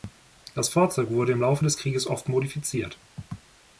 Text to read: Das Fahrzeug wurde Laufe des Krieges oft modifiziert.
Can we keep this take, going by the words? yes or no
no